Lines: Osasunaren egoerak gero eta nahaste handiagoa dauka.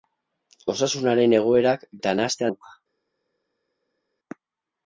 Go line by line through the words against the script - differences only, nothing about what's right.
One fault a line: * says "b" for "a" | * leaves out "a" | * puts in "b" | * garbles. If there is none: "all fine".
* leaves out "gero"
* leaves out "handiagoa"